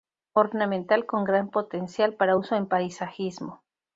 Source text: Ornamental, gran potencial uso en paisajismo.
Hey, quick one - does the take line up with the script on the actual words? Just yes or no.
no